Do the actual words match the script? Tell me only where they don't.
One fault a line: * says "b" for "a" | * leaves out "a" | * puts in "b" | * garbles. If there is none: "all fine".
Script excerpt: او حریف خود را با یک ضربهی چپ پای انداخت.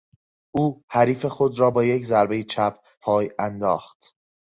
all fine